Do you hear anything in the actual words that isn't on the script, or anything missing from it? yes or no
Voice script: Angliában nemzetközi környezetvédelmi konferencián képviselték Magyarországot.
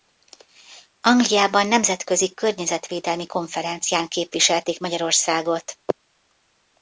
no